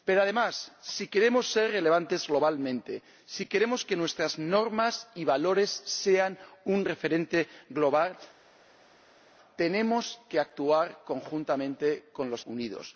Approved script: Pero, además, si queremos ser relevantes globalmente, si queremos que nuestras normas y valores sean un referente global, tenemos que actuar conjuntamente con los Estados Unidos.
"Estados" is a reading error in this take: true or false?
true